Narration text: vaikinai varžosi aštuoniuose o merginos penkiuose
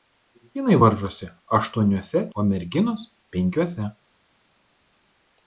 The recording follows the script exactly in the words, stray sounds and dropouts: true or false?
true